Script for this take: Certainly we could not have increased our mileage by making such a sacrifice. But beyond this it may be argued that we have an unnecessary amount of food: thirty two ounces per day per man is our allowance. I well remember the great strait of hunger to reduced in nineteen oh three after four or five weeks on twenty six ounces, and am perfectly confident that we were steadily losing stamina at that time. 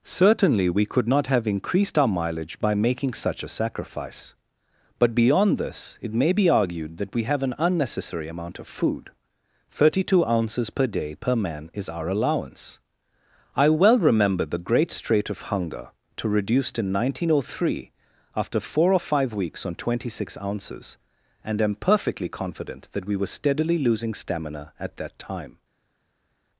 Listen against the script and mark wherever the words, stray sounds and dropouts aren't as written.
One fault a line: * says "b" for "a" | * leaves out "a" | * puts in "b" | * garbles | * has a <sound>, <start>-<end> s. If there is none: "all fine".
all fine